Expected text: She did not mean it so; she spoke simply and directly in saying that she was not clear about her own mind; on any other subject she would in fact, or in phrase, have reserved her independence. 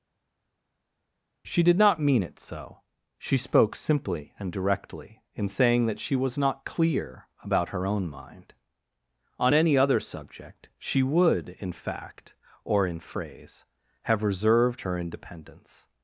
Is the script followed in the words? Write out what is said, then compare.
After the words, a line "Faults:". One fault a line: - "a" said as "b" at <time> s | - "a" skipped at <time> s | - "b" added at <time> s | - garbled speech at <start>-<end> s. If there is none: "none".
She did not mean it so; she spoke simply and directly in saying that she was not clear about her own mind; on any other subject she would in fact, or in phrase, have reserved her independence.
Faults:
none